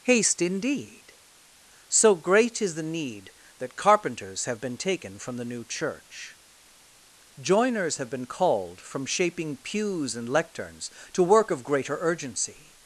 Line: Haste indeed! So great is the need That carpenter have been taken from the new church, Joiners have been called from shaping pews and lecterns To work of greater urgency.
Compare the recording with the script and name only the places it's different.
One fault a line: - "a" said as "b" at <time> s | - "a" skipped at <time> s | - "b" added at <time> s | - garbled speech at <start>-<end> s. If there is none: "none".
- "carpenter" said as "carpenters" at 3.8 s